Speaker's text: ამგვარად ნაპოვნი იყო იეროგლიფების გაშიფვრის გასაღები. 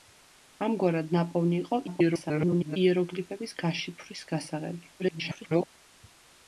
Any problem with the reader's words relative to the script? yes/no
yes